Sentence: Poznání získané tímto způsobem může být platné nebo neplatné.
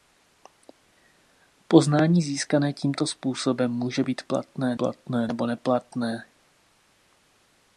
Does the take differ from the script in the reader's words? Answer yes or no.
yes